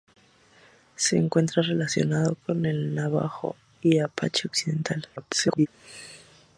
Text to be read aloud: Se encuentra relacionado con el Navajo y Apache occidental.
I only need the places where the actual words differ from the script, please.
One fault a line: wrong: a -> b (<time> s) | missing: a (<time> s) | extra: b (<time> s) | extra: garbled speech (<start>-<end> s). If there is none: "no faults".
extra: garbled speech (5.2-5.7 s)